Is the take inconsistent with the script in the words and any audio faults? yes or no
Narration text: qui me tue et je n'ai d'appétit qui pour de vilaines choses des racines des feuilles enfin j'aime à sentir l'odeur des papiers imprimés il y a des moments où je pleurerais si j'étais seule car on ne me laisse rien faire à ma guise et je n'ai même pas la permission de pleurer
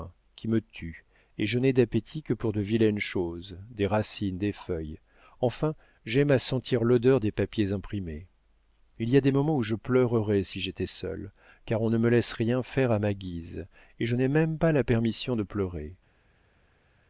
yes